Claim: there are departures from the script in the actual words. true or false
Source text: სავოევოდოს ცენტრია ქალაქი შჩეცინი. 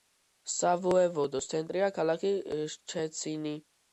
false